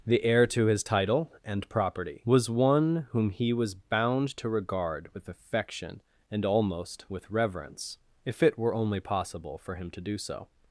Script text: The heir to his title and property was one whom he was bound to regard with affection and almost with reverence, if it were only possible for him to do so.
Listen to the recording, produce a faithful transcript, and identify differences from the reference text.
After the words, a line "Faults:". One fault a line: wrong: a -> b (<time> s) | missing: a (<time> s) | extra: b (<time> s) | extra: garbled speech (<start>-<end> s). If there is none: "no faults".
The heir to his title and property was one whom he was bound to regard with affection and almost with reverence, if it were only possible for him to do so.
Faults:
no faults